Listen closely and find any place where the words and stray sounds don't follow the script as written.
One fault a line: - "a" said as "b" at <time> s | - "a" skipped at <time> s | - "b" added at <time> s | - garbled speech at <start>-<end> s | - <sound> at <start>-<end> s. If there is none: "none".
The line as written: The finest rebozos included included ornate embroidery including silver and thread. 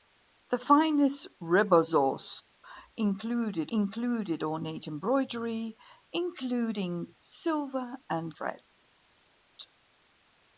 none